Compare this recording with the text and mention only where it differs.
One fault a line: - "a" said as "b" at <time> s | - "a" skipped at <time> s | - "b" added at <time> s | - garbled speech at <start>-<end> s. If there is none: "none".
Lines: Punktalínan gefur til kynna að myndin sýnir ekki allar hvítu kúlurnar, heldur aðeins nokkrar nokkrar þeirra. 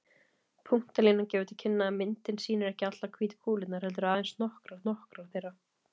none